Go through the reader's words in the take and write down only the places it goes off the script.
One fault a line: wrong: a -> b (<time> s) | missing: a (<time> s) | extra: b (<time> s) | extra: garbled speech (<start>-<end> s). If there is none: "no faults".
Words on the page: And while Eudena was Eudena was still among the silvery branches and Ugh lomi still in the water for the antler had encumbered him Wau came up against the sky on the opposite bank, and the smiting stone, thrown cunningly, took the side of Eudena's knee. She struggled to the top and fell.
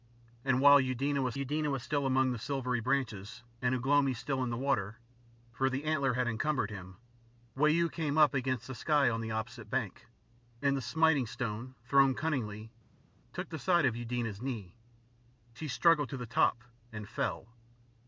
no faults